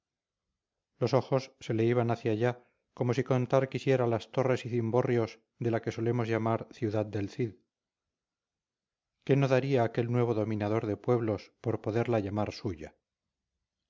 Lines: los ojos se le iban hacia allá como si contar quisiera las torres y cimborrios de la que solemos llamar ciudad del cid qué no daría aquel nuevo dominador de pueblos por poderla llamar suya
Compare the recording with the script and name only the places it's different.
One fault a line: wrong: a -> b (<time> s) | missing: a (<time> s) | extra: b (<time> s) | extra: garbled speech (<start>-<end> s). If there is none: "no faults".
no faults